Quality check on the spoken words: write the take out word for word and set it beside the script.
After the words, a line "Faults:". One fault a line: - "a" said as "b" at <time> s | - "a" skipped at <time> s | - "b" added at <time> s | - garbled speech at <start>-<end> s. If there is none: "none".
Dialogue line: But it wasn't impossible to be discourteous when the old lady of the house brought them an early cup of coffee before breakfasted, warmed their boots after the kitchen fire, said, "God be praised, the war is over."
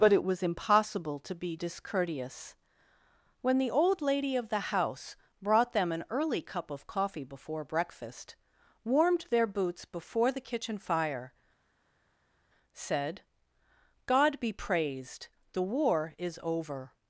But it was impossible to be discourteous when the old lady of the house brought them an early cup of coffee before breakfast, warmed their boots before the kitchen fire, said, "God be praised, the war is over."
Faults:
- "wasn't" said as "was" at 0.2 s
- "breakfasted" said as "breakfast" at 7.7 s
- "after" said as "before" at 9.8 s